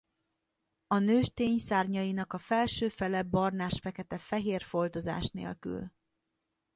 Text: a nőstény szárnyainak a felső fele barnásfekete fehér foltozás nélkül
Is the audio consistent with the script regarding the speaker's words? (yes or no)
yes